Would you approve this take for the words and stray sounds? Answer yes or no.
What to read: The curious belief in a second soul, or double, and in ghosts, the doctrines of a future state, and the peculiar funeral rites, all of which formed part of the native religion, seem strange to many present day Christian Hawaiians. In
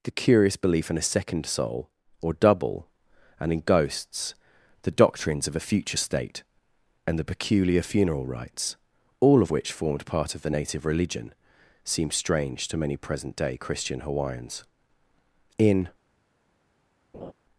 no